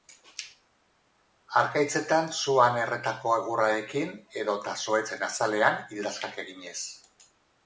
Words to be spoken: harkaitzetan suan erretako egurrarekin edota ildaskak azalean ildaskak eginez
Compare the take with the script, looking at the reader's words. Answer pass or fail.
fail